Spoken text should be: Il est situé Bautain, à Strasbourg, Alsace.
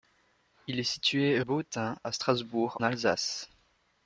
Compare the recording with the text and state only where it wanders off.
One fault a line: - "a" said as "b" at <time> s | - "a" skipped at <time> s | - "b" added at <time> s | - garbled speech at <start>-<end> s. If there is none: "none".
none